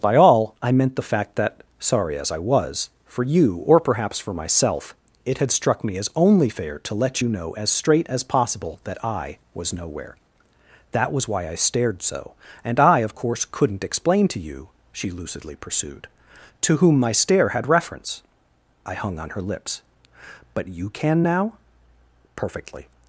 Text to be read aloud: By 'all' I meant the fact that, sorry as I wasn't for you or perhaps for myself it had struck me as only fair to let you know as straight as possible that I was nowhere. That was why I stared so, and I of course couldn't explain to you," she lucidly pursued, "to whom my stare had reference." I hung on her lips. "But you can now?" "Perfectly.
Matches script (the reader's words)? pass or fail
fail